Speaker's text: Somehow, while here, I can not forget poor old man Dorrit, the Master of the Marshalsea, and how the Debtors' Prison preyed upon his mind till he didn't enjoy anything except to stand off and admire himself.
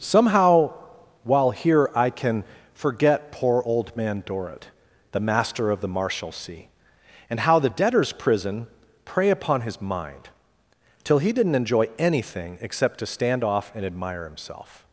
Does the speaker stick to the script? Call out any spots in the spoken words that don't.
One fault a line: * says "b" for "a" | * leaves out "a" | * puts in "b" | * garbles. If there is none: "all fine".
* leaves out "not"
* says "prey" for "preyed"